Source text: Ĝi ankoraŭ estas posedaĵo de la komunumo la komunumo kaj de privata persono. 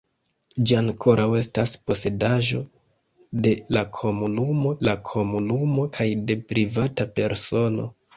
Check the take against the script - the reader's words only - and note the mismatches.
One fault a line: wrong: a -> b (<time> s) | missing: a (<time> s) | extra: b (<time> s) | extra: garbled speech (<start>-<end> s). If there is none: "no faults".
no faults